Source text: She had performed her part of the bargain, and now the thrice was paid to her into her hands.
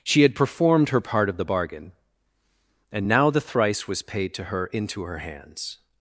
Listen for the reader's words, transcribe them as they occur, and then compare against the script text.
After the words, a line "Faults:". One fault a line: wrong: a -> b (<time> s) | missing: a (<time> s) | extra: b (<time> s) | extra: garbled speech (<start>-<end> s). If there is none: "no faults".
She had performed her part of the bargain, and now the thrice was paid to her into her hands.
Faults:
no faults